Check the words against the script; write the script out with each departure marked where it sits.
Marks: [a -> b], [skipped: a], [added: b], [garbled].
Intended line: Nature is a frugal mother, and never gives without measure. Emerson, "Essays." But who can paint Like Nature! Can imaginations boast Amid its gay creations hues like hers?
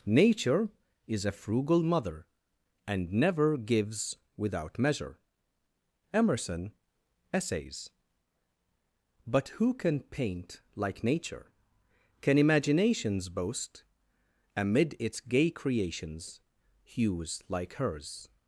Nature is a frugal mother, and never gives without measure. Emerson, "Essays." But who can paint Like Nature! Can imaginations boast Amid its gay creations hues like hers?